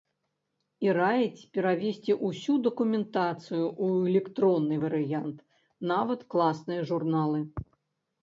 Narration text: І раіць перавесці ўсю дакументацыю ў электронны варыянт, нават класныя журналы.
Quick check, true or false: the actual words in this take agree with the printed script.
true